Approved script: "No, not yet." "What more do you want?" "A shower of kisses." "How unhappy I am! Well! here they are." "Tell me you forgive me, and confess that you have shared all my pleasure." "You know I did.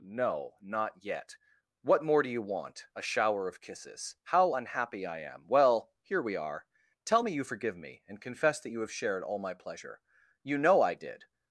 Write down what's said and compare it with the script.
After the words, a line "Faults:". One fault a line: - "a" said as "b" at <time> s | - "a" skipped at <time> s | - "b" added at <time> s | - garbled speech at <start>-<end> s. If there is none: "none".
"No, not yet." "What more do you want?" "A shower of kisses." "How unhappy I am! Well! here we are." "Tell me you forgive me, and confess that you have shared all my pleasure." "You know I did.
Faults:
- "they" said as "we" at 6.2 s